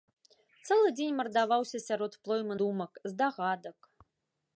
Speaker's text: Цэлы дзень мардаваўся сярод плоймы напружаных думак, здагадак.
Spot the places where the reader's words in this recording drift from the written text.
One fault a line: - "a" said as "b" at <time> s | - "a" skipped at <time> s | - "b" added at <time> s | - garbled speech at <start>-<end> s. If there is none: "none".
- "напружаных" skipped at 2.5 s